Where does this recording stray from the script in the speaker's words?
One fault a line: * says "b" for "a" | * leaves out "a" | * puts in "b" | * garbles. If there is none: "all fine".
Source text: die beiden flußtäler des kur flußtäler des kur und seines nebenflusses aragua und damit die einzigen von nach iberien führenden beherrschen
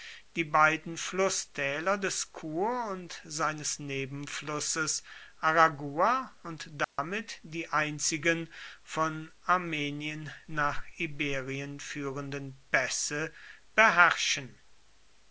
* leaves out "flußtäler des kur"
* puts in "armenien"
* puts in "pässe"